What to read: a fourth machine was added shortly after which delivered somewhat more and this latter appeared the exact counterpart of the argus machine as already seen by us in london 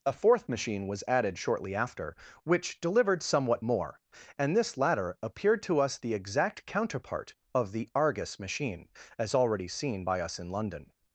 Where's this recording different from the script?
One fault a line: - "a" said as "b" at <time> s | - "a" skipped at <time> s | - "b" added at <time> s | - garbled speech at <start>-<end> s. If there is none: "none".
- "to us" added at 5.6 s